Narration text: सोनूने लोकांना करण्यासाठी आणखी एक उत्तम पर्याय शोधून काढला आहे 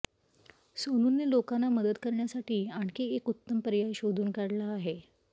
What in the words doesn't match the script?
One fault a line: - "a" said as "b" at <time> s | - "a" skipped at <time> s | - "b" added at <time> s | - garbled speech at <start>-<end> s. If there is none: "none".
- "मदत" added at 1.7 s